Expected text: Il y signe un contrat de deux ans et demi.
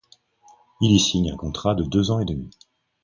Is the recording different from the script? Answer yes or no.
no